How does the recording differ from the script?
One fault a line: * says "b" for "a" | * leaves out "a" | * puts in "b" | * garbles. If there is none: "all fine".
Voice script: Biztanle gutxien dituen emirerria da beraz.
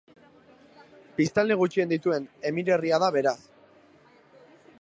all fine